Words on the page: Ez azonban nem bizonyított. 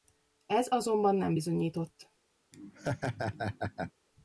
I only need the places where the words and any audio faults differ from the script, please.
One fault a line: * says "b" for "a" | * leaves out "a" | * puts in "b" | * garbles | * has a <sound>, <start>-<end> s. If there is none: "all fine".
* has a laugh, 2.5-3.9 s